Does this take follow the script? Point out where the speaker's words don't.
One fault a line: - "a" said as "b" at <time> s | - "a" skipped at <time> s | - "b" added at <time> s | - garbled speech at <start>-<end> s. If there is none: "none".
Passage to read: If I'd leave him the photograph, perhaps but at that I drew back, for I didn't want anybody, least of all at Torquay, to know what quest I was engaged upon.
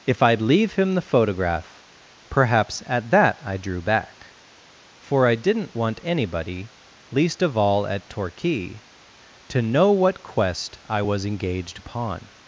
- "but" skipped at 2.8 s